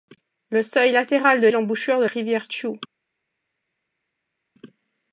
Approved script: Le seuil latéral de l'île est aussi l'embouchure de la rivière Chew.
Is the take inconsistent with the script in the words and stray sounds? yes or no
yes